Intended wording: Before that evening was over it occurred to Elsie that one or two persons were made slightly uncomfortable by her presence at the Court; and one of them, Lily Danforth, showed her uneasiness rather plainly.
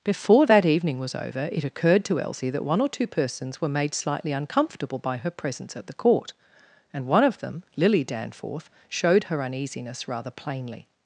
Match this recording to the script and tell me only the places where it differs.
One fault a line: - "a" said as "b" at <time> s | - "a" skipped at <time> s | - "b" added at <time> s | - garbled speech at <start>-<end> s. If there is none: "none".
none